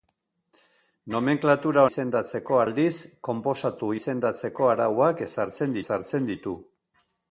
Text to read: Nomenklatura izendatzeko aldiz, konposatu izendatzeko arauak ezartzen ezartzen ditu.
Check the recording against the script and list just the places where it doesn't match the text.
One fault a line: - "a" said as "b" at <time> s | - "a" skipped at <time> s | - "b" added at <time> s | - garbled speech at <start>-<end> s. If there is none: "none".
none